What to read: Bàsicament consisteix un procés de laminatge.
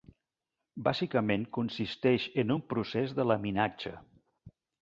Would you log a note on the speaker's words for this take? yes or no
yes